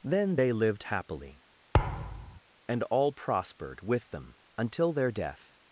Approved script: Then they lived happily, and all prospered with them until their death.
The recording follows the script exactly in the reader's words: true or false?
true